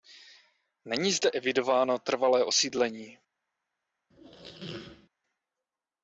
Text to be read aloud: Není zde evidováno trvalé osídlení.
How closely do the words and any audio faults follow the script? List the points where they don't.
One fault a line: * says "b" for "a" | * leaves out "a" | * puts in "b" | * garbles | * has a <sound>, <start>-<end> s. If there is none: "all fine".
* has a squeak, 4.1-5.1 s